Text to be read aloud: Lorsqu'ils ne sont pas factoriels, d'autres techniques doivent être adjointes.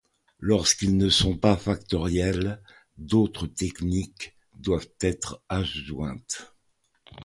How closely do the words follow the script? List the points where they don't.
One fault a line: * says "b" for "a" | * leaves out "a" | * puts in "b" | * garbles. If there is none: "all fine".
all fine